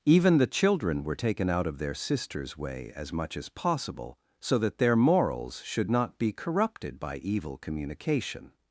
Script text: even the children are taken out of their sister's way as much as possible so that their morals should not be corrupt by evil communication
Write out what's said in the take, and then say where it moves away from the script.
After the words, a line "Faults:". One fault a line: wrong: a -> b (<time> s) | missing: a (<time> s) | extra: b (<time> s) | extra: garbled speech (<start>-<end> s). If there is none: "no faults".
even the children were taken out of their sister's way as much as possible so that their morals should not be corrupted by evil communication
Faults:
wrong: are -> were (1.0 s)
wrong: corrupt -> corrupted (6.3 s)